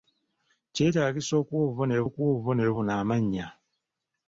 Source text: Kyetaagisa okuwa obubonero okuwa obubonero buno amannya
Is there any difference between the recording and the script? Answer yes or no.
no